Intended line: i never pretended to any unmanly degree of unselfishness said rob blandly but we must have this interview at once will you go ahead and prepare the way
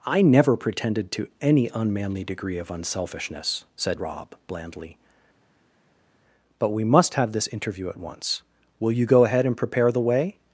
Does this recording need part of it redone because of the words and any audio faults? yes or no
no